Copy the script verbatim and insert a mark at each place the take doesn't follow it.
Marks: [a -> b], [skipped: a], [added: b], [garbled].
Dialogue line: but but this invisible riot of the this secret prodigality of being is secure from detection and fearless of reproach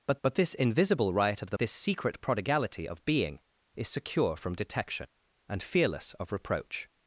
but but this invisible riot of the this secret prodigality of being is secure from detection and fearless of reproach